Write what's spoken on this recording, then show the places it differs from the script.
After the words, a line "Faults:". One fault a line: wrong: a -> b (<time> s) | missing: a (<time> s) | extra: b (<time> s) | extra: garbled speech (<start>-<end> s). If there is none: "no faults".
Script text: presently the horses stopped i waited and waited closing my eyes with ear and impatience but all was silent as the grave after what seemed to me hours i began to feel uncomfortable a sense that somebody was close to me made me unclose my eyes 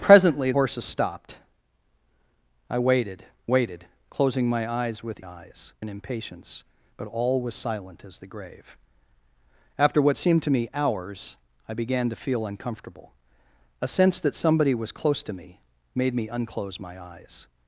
presently horses stopped i waited waited closing my eyes with eyes and impatience but all was silent as the grave after what seemed to me hours i began to feel uncomfortable a sense that somebody was close to me made me unclose my eyes
Faults:
missing: the (0.5 s)
missing: and (3.2 s)
wrong: ear -> eyes (5.2 s)